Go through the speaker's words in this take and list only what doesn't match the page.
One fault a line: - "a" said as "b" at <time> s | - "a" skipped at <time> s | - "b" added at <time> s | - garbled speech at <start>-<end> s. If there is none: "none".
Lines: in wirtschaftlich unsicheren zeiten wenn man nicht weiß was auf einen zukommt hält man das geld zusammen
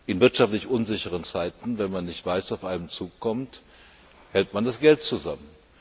none